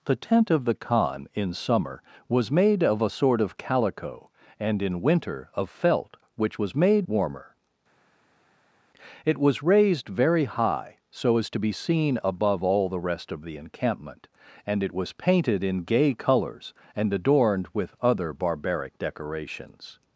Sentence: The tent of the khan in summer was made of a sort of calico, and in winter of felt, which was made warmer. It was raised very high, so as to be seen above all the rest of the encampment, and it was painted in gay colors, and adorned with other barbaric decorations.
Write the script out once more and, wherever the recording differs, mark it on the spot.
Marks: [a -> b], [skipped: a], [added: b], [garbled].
The tent of the khan in summer was made of a sort of calico, and in winter of felt, which was made warmer. It was raised very high, so as to be seen above all the rest of the encampment, and it was painted in gay colors, and adorned with other barbaric decorations.